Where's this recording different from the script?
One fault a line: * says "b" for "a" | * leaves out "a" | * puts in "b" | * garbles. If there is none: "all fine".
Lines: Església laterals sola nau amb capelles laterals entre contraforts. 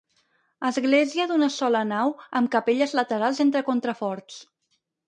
* says "d'una" for "laterals"